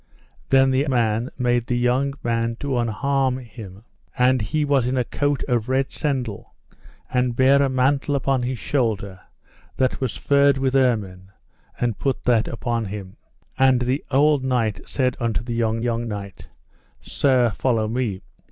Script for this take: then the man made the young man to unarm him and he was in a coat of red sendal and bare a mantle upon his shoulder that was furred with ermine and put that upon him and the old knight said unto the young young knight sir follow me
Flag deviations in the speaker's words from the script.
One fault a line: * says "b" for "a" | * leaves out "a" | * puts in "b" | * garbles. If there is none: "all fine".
all fine